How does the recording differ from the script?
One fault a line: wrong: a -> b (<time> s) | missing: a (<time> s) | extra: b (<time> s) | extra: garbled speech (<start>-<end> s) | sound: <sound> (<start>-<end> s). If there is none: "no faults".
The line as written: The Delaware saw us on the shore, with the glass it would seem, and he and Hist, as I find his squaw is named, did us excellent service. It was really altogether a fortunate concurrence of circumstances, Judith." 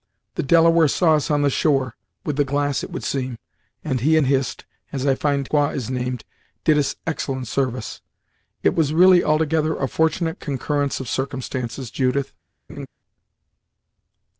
missing: his (5.5 s)
sound: laugh (12.7-12.9 s)